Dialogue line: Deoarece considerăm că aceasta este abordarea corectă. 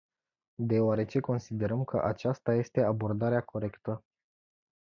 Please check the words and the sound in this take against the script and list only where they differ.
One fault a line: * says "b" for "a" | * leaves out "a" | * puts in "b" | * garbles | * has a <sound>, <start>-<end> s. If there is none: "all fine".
all fine